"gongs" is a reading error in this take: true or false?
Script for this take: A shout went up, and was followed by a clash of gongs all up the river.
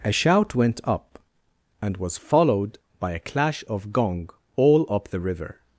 true